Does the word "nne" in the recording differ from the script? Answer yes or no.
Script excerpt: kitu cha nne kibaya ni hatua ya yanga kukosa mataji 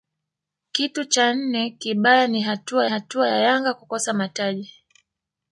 no